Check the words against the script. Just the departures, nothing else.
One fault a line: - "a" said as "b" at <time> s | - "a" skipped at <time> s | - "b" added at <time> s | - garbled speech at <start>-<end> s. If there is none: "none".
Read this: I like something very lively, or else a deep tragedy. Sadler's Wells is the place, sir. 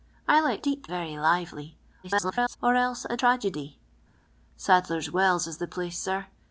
- "something" said as "deep" at 0.6 s
- garbled speech at 2.0-2.6 s
- "deep" skipped at 3.2 s